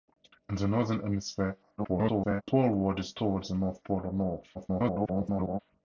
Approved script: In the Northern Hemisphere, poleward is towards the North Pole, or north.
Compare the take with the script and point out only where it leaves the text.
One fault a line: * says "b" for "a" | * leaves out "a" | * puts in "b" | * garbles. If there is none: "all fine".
* garbles
* garbles